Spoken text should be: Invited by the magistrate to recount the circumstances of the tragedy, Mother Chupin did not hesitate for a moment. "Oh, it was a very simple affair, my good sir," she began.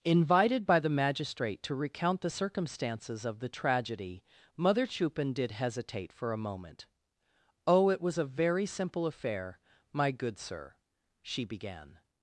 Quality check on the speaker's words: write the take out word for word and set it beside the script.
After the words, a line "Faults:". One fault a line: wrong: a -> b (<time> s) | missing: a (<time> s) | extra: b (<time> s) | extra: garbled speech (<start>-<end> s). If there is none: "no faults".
Invited by the magistrate to recount the circumstances of the tragedy, Mother Chupin did hesitate for a moment. "Oh, it was a very simple affair, my good sir," she began.
Faults:
missing: not (5.5 s)